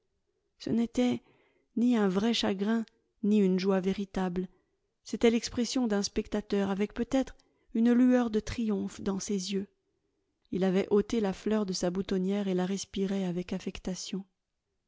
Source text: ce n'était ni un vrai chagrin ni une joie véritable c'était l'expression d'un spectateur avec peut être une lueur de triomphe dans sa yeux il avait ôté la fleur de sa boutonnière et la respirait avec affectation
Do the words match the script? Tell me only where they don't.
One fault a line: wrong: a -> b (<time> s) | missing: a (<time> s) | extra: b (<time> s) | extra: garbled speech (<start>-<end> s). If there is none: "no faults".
wrong: sa -> ses (9.2 s)